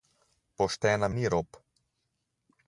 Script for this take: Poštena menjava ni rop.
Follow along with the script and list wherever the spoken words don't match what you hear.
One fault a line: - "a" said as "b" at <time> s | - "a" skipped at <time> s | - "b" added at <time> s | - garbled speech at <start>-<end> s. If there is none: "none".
- "menjava" skipped at 1.1 s